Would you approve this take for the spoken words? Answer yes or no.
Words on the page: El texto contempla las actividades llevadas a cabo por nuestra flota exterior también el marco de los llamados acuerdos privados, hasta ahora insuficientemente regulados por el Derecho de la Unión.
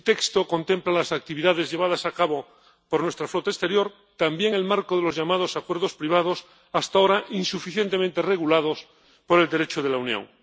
yes